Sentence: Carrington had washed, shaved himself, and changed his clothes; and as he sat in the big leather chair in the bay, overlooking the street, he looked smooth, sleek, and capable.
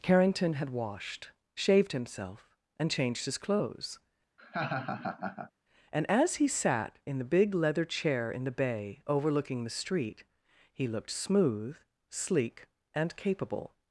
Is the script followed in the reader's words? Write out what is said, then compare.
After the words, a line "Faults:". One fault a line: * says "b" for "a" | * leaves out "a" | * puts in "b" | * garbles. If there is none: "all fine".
Carrington had washed, shaved himself, and changed his clothes; and as he sat in the big leather chair in the bay, overlooking the street, he looked smooth, sleek, and capable.
Faults:
all fine